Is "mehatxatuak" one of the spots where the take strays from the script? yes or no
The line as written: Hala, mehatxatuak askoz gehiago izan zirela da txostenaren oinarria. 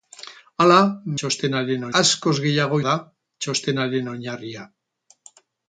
yes